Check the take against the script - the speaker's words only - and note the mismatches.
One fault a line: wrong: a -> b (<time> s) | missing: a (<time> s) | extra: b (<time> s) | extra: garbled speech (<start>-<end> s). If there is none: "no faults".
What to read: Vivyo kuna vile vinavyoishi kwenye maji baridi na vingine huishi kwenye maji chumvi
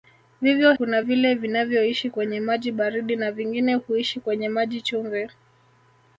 no faults